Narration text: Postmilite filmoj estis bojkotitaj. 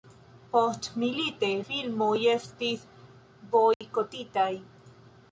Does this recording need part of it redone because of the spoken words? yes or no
no